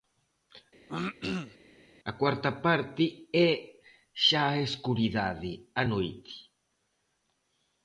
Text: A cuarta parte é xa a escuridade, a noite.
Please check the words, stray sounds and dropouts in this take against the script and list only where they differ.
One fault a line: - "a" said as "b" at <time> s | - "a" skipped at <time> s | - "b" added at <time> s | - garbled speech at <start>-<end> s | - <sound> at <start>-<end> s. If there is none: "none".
- throat clearing at 0.9-1.6 s